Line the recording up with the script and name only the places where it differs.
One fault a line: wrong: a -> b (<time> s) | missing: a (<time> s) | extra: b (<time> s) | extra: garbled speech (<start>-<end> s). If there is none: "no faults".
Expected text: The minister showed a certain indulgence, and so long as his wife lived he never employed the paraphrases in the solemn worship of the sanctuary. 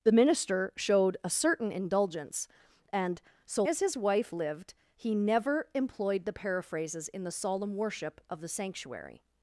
missing: long (3.6 s)